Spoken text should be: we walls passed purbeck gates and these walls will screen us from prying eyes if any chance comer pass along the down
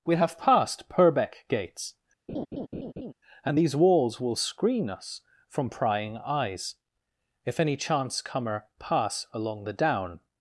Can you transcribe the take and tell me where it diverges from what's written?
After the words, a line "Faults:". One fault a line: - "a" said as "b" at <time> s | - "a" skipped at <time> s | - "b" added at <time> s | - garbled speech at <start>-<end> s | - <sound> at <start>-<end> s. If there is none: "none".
we have passed purbeck gates and these walls will screen us from prying eyes if any chance comer pass along the down
Faults:
- "walls" said as "have" at 0.1 s
- laugh at 2.3-3.1 s